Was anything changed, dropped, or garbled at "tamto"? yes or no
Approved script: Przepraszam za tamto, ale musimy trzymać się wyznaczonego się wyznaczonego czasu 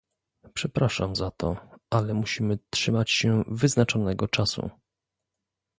yes